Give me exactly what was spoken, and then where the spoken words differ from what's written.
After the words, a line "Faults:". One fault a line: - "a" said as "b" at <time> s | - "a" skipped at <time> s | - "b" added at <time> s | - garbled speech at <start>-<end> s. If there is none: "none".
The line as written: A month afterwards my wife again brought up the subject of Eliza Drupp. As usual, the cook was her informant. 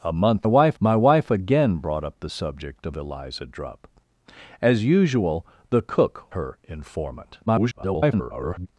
A month wife my wife again brought up the subject of Eliza Drupp. As usual, the cook her informant. [garbled]
Faults:
- "afterwards" said as "wife" at 0.4 s
- "was" skipped at 6.2 s
- garbled speech at 7.5-8.7 s